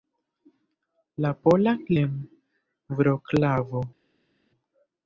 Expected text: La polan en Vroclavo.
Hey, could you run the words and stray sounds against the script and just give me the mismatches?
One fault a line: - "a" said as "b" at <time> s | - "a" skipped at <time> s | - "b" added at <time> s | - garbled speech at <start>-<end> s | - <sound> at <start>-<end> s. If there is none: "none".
none